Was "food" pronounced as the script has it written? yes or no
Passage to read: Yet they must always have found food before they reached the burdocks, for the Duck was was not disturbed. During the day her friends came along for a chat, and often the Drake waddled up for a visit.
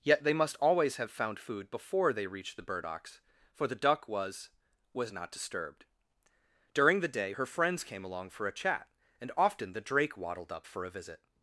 yes